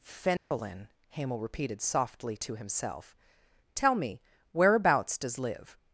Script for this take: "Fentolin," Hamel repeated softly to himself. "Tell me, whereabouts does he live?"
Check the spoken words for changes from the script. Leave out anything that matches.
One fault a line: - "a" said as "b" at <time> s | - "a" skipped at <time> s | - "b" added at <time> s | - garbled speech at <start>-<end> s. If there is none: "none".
- "he" skipped at 5.4 s